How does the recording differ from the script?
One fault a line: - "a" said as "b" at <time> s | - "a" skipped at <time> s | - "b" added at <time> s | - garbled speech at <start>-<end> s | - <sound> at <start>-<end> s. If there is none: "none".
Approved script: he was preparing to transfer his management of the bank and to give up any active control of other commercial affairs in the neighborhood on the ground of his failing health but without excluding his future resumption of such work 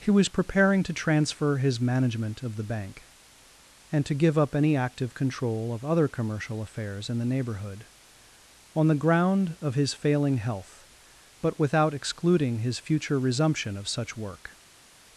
none